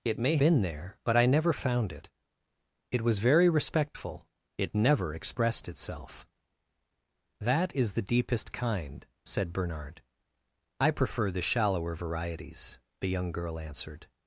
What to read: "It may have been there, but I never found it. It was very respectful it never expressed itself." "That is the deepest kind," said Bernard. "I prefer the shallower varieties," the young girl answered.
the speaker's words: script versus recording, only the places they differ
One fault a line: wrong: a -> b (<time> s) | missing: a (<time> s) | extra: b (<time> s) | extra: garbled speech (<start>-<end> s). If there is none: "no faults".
missing: have (0.4 s)